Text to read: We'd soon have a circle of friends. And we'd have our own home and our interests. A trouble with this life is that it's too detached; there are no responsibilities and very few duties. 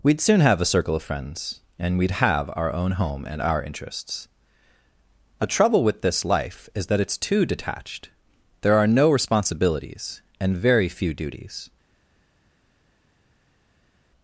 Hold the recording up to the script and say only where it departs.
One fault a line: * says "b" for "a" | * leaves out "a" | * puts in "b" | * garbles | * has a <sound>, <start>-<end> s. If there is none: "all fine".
all fine